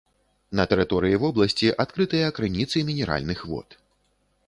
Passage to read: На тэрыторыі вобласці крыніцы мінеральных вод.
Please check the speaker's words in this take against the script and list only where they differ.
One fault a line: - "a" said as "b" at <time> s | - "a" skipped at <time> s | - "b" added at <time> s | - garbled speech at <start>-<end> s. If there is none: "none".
- "адкрытыя" added at 1.9 s